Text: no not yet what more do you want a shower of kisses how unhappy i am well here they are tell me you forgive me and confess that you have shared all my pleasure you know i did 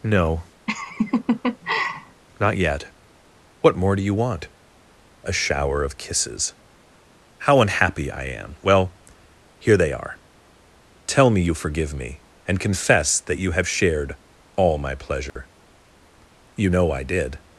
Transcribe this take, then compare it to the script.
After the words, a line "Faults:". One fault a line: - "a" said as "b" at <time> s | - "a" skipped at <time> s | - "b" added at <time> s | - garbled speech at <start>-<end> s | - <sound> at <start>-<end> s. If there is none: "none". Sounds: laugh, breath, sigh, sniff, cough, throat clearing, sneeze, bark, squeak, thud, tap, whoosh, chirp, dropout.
no not yet what more do you want a shower of kisses how unhappy i am well here they are tell me you forgive me and confess that you have shared all my pleasure you know i did
Faults:
- laugh at 0.7-2.2 s
- dropout at 15.3-15.4 s